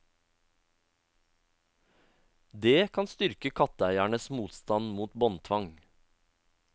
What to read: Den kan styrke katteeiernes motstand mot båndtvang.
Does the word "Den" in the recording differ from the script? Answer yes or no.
yes